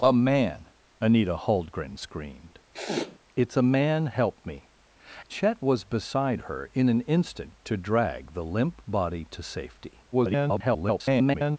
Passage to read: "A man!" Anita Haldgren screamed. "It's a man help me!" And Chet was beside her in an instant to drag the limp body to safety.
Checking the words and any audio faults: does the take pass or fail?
fail